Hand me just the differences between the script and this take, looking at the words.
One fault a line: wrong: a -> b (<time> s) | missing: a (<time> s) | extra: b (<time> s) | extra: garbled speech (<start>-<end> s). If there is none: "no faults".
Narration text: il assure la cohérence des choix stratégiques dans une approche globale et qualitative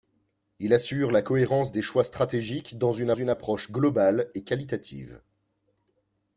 extra: une (3.1 s)